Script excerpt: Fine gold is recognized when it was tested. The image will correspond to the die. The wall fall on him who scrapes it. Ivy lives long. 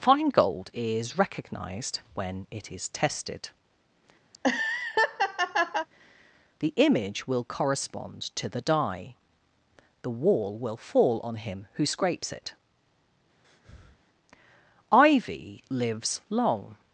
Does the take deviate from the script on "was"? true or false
true